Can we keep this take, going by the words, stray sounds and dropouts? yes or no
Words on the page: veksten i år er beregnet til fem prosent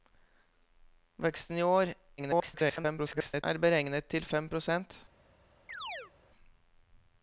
no